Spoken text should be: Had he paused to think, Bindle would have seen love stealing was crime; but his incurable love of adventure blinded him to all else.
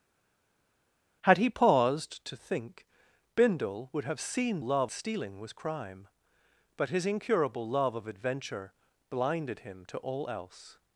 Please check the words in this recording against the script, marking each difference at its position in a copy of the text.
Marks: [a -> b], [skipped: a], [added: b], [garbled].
Had he paused to think, Bindle would have seen love stealing was crime; but his incurable love of adventure blinded him to all else.